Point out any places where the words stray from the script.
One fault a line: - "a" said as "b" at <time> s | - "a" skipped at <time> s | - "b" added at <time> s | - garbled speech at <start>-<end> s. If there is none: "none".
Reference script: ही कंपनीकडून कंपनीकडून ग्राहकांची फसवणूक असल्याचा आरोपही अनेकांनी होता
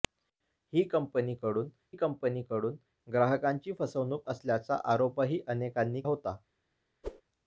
none